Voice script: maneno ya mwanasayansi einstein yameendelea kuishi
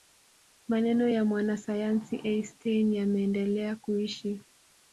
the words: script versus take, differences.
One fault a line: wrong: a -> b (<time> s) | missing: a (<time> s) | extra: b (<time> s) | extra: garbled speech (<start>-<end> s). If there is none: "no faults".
no faults